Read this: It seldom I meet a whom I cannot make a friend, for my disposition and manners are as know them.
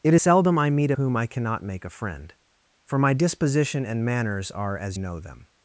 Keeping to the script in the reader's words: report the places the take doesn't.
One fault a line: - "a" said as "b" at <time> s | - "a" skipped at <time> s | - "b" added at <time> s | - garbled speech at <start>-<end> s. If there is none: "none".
none